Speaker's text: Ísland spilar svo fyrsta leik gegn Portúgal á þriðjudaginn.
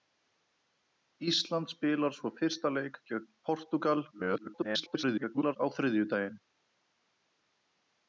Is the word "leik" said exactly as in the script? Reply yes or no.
yes